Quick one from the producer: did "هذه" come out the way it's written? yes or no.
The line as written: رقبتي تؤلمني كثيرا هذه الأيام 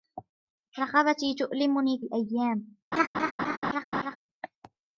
no